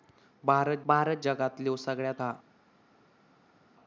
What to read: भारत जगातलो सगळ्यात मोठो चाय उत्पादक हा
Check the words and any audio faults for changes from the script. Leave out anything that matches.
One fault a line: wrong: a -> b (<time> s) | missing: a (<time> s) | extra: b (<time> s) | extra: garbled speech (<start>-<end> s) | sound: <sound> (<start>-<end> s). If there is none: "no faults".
extra: भारत (0.8 s)
missing: मोठो चाय उत्पादक (2.2 s)